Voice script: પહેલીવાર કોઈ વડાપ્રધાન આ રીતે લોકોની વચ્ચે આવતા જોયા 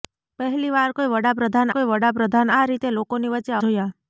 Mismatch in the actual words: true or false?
true